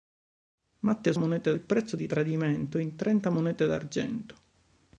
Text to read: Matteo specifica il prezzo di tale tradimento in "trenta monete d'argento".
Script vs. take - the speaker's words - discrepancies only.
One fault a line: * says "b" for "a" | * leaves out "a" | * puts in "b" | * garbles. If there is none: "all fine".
* says "monete" for "specifica"
* leaves out "tale"